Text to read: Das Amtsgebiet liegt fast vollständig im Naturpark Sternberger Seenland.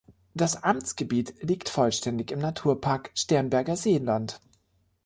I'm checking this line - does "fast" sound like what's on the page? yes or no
no